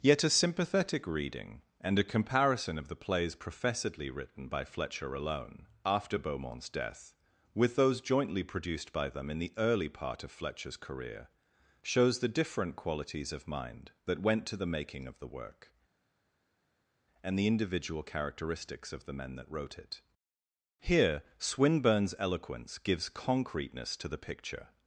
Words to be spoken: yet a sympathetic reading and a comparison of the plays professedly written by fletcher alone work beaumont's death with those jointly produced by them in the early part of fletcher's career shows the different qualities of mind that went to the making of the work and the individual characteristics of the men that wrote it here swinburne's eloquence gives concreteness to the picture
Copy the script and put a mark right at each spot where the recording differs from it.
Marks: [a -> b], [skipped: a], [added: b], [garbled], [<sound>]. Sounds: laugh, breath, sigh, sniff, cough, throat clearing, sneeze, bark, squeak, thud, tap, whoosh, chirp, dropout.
yet a sympathetic reading and a comparison of the plays professedly written by fletcher alone [work -> after] beaumont's death with those jointly produced by them in the early part of fletcher's career shows the different qualities of mind that went to the making of the work and the individual characteristics of the men that wrote it here swinburne's eloquence gives concreteness to the picture